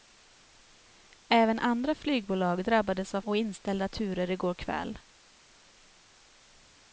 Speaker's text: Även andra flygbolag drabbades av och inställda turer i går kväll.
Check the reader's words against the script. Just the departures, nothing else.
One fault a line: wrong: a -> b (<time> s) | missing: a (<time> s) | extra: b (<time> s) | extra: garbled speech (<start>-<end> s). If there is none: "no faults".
no faults